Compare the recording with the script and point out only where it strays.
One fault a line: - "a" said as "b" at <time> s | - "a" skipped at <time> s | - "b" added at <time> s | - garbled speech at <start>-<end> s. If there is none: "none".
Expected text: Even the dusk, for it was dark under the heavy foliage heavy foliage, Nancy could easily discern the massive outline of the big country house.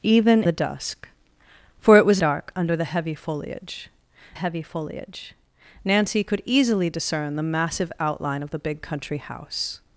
none